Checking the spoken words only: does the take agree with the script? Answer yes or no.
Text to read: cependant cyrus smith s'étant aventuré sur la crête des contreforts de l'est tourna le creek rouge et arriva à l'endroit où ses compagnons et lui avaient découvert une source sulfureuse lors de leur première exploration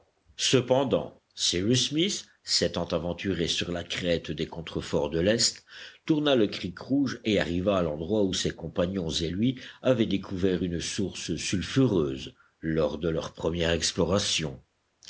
yes